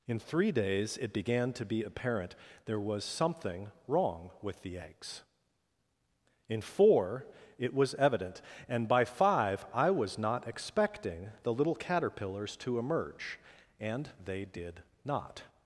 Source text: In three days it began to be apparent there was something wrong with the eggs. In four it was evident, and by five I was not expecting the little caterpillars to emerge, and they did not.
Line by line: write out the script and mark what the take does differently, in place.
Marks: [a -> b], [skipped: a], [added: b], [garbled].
In three days it began to be apparent there was something wrong with the eggs. In four it was evident, and by five I was not expecting the little caterpillars to emerge, and they did not.